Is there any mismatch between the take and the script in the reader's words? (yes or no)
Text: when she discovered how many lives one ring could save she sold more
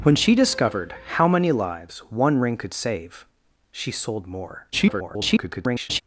yes